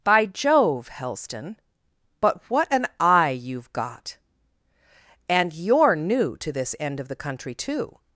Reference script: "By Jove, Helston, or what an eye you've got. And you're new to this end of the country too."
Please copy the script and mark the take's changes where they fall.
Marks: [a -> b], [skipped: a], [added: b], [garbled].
"By Jove, Helston, [or -> but] what an eye you've got. And you're new to this end of the country too."